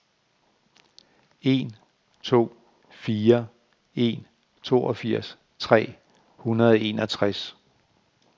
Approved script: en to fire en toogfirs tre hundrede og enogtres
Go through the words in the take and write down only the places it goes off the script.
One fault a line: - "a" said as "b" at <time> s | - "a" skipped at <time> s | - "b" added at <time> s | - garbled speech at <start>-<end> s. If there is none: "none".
none